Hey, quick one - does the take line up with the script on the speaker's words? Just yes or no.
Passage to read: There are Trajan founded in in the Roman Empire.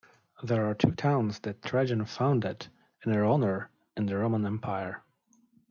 no